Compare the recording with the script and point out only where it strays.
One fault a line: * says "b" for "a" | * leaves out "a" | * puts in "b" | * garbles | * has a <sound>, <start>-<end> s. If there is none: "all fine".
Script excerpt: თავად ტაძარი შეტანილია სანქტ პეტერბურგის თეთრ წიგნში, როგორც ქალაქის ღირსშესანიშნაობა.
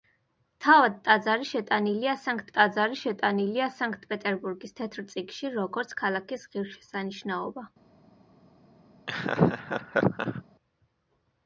* puts in "ტაძარი შეტანილია სანქტ"
* has a laugh, 9.1-10.4 s